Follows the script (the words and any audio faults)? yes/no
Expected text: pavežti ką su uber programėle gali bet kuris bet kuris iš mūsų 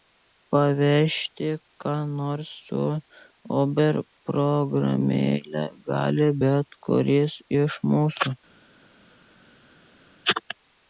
no